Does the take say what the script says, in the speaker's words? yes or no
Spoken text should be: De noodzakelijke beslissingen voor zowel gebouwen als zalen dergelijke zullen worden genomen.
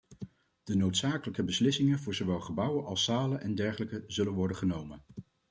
no